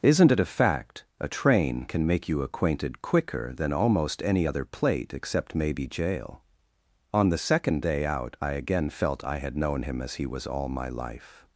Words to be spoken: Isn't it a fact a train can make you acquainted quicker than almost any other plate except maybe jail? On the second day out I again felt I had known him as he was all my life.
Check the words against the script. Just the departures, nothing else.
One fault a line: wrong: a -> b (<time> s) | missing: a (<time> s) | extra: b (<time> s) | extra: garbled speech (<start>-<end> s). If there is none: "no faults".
no faults